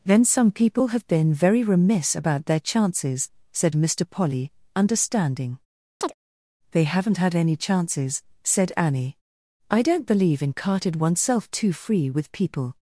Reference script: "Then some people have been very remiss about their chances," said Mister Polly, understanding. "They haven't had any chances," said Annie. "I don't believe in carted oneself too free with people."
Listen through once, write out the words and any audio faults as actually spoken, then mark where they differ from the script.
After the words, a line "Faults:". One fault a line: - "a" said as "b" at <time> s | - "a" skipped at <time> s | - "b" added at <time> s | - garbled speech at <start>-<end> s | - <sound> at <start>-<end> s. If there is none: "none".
"Then some people have been very remiss about their chances," said Mister Polly, understanding. "They haven't had any chances," said Annie. "I don't believe in carted oneself too free with people."
Faults:
- chirp at 6.0-6.2 s